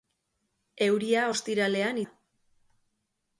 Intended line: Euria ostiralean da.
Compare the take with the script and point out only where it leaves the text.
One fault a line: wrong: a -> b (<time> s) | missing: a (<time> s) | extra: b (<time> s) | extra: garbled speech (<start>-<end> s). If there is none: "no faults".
no faults